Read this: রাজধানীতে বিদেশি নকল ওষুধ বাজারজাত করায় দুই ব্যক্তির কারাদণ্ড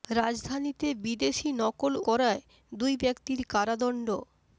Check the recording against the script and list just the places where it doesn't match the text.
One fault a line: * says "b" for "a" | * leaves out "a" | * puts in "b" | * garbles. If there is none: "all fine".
* leaves out "ওষুধ বাজারজাত"